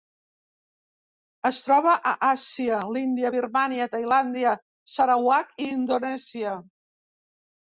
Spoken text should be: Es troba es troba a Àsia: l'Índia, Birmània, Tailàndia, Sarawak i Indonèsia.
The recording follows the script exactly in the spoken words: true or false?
false